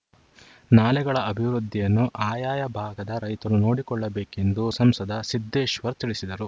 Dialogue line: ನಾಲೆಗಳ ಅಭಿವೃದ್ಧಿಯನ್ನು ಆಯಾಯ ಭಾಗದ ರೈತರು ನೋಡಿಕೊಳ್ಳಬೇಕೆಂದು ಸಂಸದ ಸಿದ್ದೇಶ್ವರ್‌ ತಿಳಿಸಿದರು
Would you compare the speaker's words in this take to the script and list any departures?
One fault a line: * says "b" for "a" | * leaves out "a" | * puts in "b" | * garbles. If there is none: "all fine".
all fine